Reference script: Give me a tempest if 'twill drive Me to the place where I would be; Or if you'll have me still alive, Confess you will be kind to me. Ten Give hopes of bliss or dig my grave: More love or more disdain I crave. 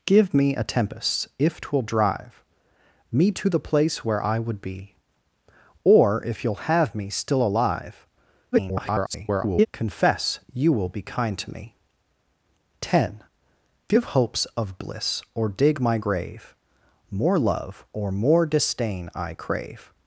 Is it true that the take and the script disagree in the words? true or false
true